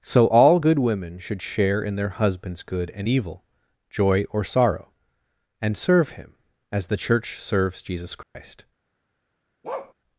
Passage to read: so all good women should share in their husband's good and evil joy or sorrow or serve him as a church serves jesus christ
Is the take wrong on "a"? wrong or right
wrong